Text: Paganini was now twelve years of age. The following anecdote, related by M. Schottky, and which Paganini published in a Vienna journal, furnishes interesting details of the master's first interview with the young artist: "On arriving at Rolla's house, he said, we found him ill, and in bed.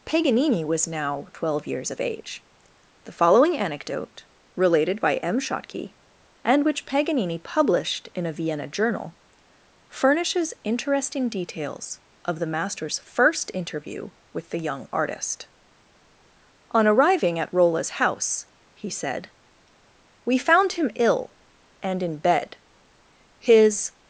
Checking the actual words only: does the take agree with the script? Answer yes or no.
no